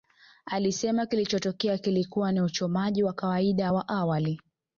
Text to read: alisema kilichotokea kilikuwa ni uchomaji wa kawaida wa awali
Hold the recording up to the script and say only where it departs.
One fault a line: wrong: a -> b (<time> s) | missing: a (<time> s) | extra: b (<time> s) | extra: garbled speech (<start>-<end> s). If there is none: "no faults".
no faults